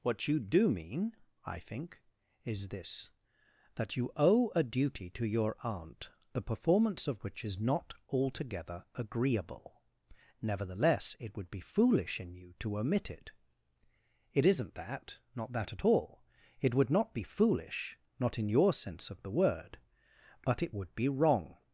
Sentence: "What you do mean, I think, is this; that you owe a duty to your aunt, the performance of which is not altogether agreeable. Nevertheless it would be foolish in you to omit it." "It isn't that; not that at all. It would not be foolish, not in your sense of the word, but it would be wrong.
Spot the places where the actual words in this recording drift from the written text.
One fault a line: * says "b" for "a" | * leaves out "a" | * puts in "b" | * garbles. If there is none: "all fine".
all fine